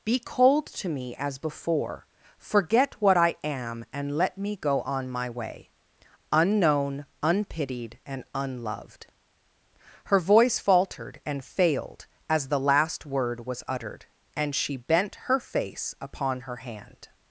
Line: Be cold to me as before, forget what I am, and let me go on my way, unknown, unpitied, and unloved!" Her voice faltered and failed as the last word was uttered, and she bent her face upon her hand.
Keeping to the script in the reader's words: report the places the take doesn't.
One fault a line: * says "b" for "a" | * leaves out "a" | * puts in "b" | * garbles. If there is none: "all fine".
all fine